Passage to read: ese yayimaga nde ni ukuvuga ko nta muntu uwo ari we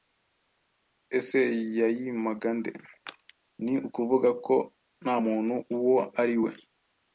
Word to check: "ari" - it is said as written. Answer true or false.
true